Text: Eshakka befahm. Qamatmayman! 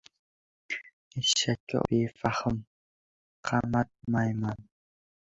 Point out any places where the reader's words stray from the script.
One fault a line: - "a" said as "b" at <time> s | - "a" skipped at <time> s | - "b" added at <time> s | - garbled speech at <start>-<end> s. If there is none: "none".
none